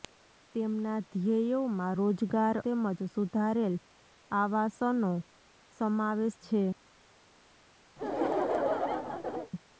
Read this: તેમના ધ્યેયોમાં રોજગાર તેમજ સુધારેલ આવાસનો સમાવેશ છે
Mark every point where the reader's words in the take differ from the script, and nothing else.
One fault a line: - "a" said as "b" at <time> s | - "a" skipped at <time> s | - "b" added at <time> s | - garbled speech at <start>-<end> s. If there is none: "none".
none